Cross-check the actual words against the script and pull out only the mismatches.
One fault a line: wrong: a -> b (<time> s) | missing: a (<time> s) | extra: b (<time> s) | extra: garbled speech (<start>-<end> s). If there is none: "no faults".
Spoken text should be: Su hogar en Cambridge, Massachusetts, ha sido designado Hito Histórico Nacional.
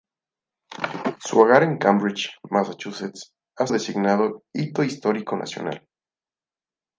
missing: sido (3.7 s)